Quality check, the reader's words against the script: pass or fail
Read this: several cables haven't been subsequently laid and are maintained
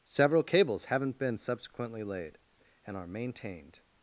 pass